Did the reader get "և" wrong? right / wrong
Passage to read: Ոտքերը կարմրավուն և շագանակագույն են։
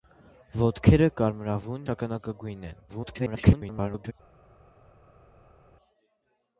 wrong